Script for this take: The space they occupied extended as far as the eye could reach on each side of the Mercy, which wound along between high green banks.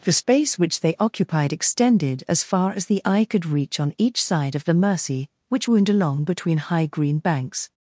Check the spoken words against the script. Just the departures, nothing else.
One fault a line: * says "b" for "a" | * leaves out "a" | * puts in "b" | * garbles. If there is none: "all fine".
* puts in "which"